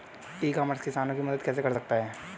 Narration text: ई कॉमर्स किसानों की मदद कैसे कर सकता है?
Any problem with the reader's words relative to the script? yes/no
no